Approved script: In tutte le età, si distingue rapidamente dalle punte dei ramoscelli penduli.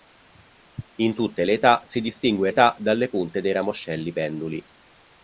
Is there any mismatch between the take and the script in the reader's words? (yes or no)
yes